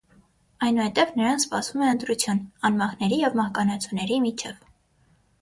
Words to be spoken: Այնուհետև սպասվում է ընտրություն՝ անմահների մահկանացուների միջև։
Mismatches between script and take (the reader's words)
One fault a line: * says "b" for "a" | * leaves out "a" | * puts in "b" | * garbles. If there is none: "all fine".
* puts in "նրան"
* puts in "և"